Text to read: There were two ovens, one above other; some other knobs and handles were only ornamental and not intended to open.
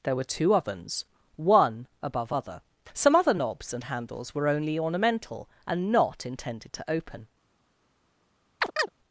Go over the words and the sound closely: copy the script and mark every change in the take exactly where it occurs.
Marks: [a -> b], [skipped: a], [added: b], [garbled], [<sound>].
There were two ovens, one above other; some other knobs and handles were only ornamental and not intended to open. [chirp]